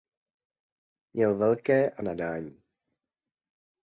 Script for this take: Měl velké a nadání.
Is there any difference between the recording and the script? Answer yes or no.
no